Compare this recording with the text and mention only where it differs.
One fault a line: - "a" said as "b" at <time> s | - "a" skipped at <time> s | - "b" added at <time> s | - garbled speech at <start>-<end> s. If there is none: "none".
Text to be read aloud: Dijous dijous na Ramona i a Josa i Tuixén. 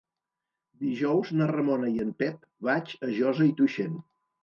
- "dijous" skipped at 1.4 s
- "en Pep vaig" added at 2.1 s